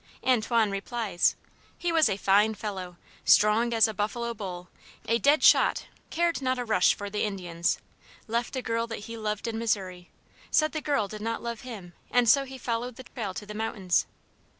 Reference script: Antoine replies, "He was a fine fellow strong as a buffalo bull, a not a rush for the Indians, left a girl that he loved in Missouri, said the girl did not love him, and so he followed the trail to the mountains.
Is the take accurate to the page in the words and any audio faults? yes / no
no